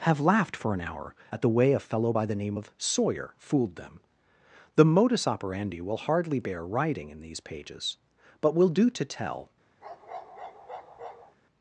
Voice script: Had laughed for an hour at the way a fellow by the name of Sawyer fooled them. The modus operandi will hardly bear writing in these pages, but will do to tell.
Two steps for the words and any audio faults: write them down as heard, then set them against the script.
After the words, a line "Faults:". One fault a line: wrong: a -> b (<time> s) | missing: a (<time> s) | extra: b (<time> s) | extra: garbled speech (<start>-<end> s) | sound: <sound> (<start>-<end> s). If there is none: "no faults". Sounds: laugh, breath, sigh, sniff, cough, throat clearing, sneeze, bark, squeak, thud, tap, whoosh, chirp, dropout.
Have laughed for an hour at the way a fellow by the name of Sawyer fooled them. The modus operandi will hardly bear writing in these pages, but will do to tell.
Faults:
wrong: Had -> Have (0.0 s)
sound: bark (9.8-11.4 s)